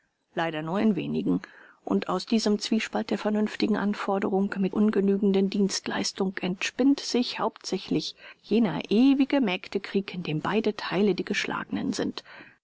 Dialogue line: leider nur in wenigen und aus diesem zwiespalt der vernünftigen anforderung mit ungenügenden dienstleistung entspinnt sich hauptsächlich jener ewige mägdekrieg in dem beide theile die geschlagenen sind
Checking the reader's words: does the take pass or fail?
pass